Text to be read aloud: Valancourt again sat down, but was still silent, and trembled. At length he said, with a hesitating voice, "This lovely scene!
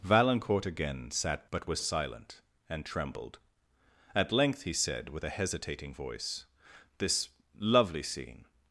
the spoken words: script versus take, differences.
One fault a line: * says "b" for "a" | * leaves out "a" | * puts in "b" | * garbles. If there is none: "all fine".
* leaves out "down"
* leaves out "still"